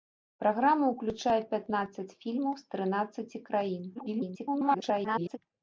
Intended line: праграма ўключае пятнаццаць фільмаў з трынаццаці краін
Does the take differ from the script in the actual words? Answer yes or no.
yes